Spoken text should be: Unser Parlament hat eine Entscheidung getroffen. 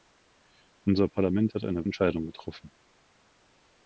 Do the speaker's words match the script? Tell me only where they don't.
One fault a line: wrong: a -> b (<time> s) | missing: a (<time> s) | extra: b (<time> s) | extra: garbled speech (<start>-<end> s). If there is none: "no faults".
no faults